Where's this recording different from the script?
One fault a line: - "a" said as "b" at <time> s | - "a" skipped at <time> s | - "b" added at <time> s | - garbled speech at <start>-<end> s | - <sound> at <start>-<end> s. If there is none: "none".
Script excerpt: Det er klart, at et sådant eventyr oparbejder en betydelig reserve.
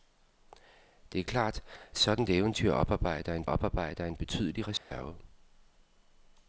- "at" skipped at 1.6 s
- "oparbejder en" added at 3.4 s
- dropout at 4.8-4.9 s